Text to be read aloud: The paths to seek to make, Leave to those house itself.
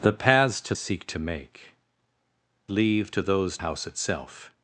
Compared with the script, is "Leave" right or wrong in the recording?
right